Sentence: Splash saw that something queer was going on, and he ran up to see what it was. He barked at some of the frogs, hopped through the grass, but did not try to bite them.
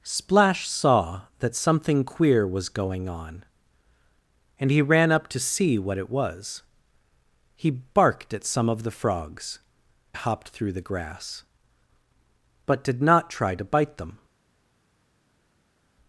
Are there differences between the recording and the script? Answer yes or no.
no